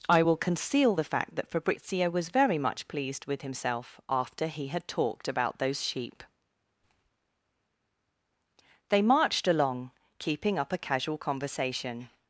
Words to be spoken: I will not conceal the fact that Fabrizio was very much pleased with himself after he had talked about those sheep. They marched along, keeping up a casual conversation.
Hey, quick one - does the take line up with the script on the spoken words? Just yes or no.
no